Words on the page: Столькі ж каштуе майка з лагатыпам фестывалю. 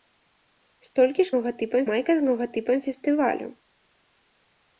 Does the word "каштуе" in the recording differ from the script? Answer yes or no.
yes